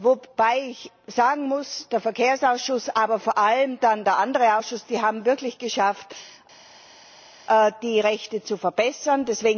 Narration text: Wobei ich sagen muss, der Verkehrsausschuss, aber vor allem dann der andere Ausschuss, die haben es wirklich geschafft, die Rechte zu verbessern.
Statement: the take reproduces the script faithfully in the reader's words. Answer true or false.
true